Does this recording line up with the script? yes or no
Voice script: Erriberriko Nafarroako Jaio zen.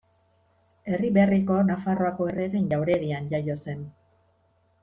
no